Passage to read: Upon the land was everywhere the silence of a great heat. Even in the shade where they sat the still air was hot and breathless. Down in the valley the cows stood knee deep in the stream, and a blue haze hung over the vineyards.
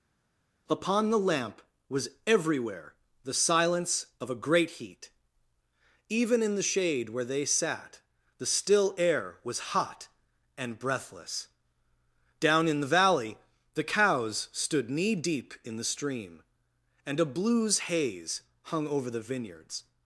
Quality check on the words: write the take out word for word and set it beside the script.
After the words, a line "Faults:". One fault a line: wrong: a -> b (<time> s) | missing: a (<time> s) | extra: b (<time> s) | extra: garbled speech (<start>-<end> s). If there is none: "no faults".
Upon the lamp was everywhere the silence of a great heat. Even in the shade where they sat the still air was hot and breathless. Down in the valley the cows stood knee deep in the stream, and a blues haze hung over the vineyards.
Faults:
wrong: land -> lamp (1.2 s)
wrong: blue -> blues (17.2 s)